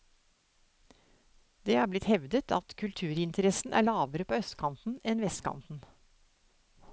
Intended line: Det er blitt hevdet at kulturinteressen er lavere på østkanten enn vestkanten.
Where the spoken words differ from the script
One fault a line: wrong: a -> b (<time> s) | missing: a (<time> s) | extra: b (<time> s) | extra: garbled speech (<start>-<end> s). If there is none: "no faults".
no faults